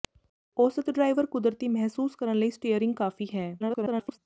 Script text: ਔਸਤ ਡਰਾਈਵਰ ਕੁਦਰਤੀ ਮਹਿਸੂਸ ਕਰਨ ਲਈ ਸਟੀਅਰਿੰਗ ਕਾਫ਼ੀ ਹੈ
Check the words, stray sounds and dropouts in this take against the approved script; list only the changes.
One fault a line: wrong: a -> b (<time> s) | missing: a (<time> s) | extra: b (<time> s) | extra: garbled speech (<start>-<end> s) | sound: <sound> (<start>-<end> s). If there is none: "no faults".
extra: garbled speech (3.6-4.2 s)